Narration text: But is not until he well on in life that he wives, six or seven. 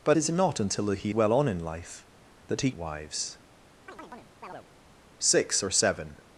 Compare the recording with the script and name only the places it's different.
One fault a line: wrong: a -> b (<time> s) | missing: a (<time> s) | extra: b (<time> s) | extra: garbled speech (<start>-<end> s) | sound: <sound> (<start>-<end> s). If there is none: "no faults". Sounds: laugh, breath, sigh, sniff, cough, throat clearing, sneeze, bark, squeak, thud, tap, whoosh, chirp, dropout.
sound: chirp (3.9-4.7 s)